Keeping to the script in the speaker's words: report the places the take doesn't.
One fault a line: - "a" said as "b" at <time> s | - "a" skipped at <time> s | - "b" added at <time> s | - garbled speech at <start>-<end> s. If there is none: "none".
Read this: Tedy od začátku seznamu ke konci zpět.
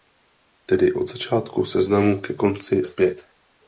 none